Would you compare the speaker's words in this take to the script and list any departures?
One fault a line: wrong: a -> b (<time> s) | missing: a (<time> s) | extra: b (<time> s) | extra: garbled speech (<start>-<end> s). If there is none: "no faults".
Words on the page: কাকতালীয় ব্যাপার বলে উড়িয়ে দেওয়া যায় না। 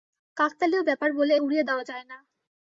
no faults